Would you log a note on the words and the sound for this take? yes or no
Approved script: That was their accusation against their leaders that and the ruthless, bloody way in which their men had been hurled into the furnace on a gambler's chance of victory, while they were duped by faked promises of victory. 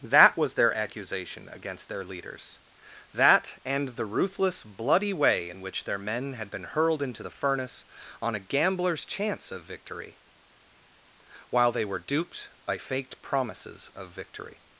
no